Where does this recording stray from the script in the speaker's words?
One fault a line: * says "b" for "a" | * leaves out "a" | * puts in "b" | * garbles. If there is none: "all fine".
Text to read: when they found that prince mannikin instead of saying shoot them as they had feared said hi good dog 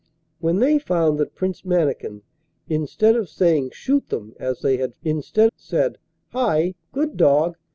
* says "instead" for "feared"